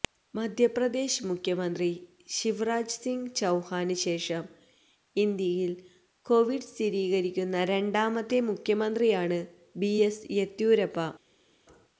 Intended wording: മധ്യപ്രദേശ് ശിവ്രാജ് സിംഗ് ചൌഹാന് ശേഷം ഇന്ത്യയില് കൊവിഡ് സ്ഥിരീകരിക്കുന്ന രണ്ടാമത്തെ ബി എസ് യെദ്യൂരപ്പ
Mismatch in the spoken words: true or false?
true